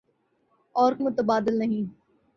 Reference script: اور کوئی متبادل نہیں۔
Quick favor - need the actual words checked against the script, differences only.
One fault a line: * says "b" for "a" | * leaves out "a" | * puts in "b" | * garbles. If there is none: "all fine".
* leaves out "کوئی"